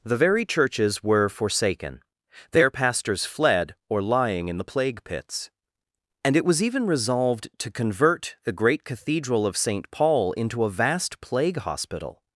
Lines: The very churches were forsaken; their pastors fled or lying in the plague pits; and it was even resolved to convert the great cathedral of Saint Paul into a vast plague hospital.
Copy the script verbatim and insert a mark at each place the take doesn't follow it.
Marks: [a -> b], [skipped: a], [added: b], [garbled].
The very churches were forsaken; their pastors fled or lying in the plague pits; and it was even resolved to convert the great cathedral of Saint Paul into a vast plague hospital.